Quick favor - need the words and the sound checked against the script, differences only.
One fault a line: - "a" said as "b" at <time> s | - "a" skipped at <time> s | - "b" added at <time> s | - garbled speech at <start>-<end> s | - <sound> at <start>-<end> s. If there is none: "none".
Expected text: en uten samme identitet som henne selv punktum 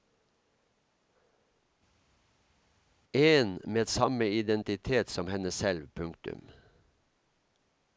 - "uten" said as "med" at 3.7 s